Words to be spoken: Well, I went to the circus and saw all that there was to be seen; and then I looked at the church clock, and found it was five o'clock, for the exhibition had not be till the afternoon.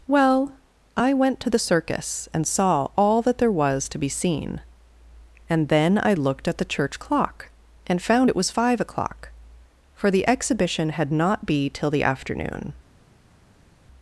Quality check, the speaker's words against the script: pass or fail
pass